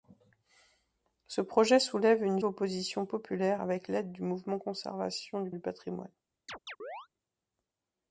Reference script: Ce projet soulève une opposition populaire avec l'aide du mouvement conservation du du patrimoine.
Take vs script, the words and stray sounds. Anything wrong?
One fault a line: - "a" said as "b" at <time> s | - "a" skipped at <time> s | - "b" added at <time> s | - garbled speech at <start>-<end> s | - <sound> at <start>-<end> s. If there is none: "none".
- chirp at 6.5-7.1 s